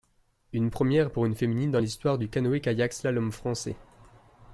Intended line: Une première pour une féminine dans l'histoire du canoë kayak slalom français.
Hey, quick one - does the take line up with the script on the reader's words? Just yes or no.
yes